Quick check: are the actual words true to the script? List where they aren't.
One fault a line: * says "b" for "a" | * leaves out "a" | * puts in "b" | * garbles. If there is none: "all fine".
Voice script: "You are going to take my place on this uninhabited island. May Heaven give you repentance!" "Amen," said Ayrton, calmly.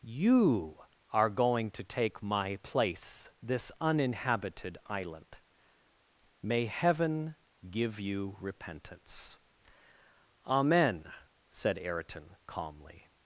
* leaves out "on"